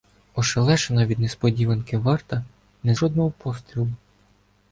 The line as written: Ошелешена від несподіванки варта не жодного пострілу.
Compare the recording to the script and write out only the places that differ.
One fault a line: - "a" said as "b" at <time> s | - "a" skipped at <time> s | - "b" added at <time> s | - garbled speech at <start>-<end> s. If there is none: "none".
none